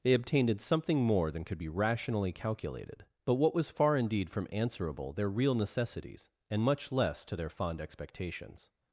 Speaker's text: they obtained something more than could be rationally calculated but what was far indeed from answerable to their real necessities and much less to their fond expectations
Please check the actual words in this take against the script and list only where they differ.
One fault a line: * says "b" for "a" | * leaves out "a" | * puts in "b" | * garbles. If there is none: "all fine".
* leaves out "to"